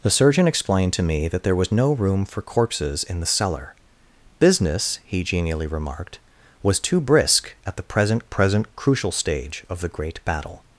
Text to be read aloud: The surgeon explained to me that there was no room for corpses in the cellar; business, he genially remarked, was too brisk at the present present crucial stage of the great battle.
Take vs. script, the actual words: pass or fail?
pass